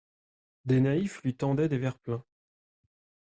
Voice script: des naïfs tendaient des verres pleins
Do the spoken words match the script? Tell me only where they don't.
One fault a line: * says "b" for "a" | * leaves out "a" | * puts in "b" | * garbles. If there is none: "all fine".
* puts in "lui"